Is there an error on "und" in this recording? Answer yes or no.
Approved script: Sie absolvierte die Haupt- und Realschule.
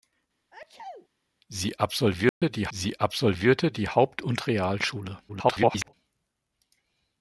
no